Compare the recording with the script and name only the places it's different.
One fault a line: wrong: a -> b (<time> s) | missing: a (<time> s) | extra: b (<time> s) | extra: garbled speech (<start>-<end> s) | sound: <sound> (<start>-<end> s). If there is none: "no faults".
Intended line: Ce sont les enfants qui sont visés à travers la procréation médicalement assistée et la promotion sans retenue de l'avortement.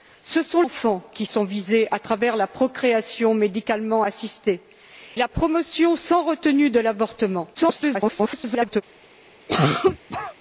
missing: les (0.6 s)
missing: et (4.6 s)
extra: garbled speech (7.5-8.8 s)
sound: cough (9.5-10.3 s)